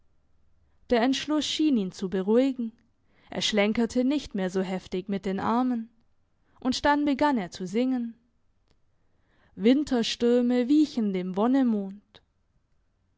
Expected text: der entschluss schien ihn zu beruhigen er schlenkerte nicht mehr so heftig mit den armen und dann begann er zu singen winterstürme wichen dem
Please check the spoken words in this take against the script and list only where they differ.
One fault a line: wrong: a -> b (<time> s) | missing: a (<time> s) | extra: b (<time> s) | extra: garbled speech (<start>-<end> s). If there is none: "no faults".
no faults